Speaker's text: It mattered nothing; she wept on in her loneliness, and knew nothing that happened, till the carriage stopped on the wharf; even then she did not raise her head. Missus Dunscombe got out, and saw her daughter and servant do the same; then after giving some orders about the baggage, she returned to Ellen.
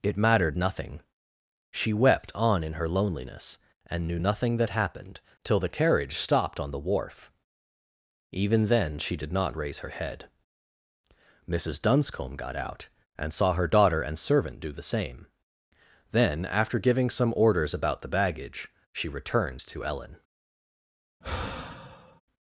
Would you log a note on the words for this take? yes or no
no